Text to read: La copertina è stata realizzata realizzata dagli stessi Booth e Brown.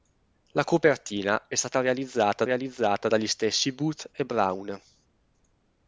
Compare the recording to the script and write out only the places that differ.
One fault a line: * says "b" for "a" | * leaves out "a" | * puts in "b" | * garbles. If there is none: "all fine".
all fine